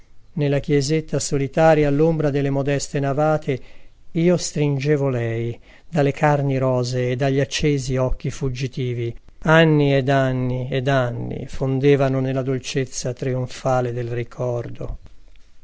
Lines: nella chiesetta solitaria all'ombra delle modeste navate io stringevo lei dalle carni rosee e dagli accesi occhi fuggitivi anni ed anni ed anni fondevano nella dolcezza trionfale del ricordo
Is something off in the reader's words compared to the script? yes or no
no